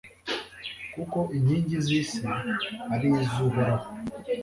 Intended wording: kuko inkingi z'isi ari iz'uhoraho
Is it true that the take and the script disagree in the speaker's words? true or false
false